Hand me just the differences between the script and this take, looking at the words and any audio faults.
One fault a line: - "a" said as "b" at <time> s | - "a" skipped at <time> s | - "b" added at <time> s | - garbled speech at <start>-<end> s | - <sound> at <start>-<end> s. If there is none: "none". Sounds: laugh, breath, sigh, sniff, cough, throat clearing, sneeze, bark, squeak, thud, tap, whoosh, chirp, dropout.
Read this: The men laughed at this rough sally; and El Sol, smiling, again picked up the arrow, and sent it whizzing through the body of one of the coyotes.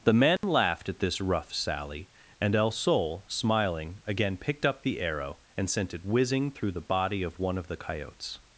- dropout at 0.4-0.4 s